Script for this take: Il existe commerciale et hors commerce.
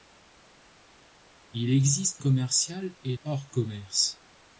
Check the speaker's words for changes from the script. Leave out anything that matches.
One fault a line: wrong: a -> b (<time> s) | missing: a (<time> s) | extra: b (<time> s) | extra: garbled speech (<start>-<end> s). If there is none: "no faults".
no faults